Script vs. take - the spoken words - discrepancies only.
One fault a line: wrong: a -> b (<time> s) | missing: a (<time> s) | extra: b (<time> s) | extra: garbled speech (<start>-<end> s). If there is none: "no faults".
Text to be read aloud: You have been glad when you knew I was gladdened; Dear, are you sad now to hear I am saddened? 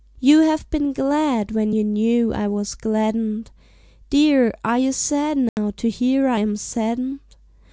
no faults